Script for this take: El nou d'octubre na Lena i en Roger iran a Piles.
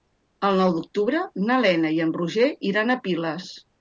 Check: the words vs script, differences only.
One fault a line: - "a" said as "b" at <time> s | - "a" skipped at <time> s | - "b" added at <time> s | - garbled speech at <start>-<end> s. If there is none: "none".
none